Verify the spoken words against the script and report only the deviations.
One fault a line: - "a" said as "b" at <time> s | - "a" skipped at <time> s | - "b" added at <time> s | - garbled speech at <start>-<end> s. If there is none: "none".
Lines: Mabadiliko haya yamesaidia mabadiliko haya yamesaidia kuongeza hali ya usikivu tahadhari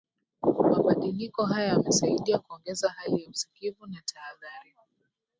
- "mabadiliko haya yamesaidia" skipped at 2.4 s
- "na" added at 3.9 s